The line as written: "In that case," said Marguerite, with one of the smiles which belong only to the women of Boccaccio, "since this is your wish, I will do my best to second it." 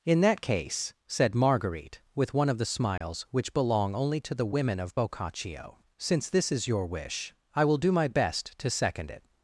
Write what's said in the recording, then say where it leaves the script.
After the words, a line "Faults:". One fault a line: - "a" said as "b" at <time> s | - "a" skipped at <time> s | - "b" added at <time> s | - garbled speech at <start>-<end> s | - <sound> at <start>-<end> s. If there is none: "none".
"In that case," said Marguerite, with one of the smiles which belong only to the women of Boccaccio, "since this is your wish, I will do my best to second it."
Faults:
- dropout at 3.0-3.0 s